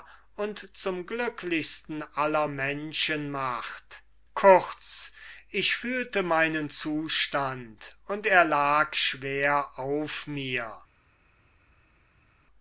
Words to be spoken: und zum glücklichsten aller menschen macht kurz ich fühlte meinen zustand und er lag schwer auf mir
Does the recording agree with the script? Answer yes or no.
yes